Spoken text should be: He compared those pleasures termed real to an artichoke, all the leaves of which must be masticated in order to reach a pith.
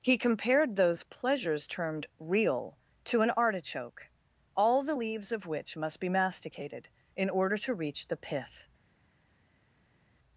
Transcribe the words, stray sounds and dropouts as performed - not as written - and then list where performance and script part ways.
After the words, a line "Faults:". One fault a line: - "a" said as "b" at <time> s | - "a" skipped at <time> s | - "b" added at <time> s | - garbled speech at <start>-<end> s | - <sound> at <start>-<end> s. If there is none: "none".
He compared those pleasures termed real to an artichoke, all the leaves of which must be masticated in order to reach the pith.
Faults:
- "a" said as "the" at 8.1 s